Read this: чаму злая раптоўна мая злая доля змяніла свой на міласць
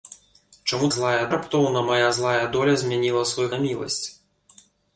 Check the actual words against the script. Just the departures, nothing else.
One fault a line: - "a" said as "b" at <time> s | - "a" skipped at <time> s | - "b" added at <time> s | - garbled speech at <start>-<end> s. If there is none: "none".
none